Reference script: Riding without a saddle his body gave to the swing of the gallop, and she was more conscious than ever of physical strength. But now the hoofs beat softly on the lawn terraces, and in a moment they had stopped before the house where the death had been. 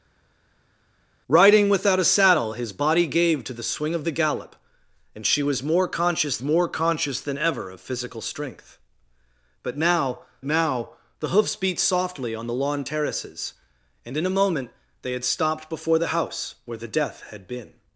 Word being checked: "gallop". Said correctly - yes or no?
yes